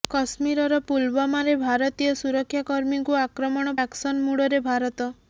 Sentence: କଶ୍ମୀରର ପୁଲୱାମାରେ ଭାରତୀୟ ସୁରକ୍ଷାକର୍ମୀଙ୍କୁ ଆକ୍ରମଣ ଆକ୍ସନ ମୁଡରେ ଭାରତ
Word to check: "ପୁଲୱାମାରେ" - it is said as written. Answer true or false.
true